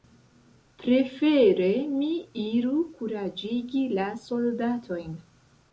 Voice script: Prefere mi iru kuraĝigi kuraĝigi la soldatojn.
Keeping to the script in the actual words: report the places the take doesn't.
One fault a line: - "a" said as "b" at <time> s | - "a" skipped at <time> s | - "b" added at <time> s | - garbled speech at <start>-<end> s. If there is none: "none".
- "kuraĝigi" skipped at 3.9 s